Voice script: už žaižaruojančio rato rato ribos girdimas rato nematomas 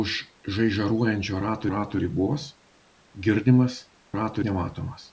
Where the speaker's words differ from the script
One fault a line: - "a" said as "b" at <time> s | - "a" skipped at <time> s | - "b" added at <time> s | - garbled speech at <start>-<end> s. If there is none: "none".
none